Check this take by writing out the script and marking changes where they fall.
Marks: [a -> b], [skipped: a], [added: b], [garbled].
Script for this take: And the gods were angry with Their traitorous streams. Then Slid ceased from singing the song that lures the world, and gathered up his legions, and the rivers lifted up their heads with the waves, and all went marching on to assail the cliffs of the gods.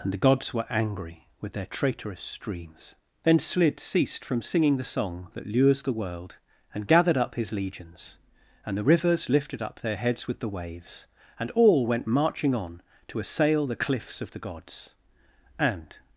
And the gods were angry with Their traitorous streams. Then Slid ceased from singing the song that lures the world, and gathered up his legions, and the rivers lifted up their heads with the waves, and all went marching on to assail the cliffs of the gods. [added: And]